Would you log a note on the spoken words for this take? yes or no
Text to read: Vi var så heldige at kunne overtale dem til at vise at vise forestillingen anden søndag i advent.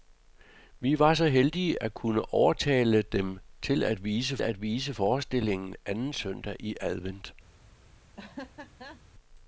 no